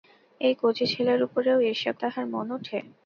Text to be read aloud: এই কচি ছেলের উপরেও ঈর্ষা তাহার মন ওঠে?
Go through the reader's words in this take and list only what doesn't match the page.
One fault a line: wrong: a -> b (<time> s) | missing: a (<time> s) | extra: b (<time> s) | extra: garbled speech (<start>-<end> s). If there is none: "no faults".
no faults